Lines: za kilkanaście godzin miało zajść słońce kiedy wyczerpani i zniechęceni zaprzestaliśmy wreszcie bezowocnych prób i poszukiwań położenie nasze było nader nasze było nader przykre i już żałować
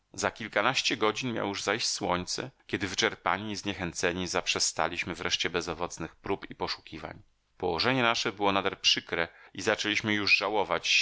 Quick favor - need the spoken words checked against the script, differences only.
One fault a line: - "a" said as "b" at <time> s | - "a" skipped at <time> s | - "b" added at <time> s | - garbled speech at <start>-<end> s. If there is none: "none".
- "już" added at 1.5 s
- "nasze było nader" skipped at 8.8 s
- "zaczęliśmy" added at 9.6 s